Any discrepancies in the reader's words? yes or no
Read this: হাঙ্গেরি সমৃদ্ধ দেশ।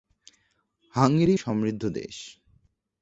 no